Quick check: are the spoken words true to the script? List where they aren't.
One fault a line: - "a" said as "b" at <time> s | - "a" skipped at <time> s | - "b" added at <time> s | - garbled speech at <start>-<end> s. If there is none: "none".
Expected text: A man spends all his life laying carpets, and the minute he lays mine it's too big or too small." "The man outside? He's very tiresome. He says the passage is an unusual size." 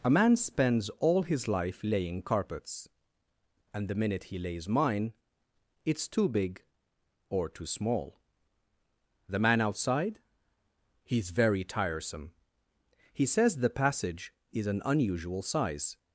none